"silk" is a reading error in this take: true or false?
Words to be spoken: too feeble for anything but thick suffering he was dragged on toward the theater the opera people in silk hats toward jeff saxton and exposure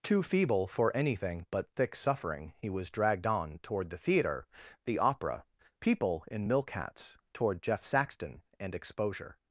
true